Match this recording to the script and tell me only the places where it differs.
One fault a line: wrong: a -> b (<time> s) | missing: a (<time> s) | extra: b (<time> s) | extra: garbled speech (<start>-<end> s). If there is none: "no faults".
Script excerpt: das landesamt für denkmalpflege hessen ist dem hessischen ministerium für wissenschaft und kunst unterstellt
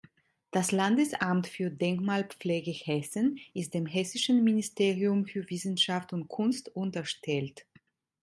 no faults